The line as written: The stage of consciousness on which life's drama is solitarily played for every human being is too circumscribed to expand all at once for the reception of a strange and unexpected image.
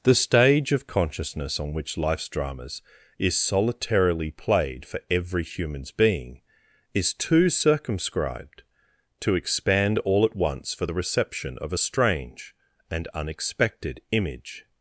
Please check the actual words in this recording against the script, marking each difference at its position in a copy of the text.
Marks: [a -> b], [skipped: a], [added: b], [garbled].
The stage of consciousness on which life's [drama -> dramas] is solitarily played for every [human -> humans] being is too circumscribed to expand all at once for the reception of a strange and unexpected image.